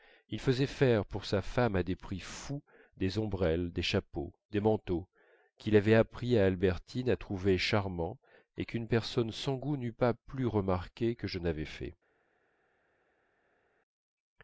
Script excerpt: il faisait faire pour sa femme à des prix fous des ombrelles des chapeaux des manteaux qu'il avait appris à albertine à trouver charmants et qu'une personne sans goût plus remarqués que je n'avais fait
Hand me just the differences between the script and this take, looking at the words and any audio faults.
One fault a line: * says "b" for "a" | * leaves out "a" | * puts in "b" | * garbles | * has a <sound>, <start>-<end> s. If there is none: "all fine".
* puts in "n'eût pas"